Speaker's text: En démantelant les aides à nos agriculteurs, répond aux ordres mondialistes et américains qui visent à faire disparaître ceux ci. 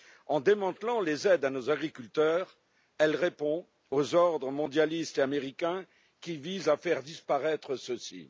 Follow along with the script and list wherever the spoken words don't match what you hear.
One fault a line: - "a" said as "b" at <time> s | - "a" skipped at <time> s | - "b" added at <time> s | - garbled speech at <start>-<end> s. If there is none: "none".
- "elle" added at 3.0 s